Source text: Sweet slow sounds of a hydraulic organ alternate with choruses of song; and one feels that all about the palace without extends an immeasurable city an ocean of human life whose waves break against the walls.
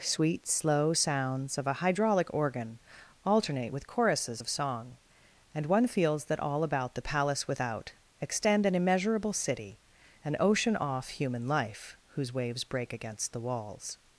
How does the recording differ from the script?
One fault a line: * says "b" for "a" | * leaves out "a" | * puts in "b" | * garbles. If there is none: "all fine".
* says "extend" for "extends"
* says "off" for "of"